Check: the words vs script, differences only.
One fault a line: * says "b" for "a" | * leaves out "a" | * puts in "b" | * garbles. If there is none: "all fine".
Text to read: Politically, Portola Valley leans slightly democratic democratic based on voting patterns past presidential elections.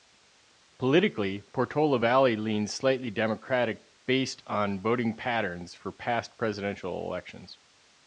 * leaves out "democratic"
* puts in "for"